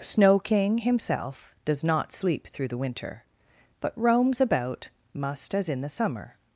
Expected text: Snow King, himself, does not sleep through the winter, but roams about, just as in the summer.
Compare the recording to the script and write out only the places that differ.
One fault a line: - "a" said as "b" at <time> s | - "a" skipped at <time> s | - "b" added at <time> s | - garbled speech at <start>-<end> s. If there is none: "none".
- "just" said as "must" at 5.1 s